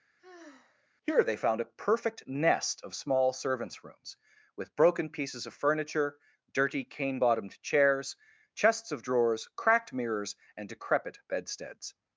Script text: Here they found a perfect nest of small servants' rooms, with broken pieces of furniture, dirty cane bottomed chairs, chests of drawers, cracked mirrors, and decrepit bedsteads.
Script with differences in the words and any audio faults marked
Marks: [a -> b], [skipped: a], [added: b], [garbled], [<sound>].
[sigh] Here they found a perfect nest of small servants' rooms, with broken pieces of furniture, dirty cane bottomed chairs, chests of drawers, cracked mirrors, and decrepit bedsteads.